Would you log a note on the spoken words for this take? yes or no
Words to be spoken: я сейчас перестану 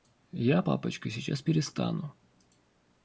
yes